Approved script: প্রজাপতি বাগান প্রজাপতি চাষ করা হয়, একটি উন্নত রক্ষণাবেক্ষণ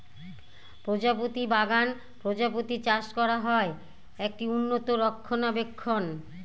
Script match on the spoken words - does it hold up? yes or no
yes